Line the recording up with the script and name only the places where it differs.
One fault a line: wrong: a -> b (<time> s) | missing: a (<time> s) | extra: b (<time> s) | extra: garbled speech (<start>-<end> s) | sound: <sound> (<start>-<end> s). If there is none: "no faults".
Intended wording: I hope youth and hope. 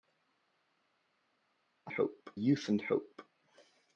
no faults